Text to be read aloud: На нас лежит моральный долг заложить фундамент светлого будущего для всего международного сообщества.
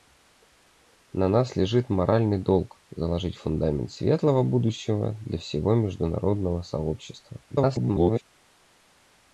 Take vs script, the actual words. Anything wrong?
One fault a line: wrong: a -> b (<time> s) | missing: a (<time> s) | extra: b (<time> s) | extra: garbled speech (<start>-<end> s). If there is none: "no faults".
extra: garbled speech (7.5-8.2 s)